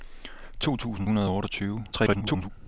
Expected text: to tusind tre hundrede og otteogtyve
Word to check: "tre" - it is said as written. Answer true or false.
false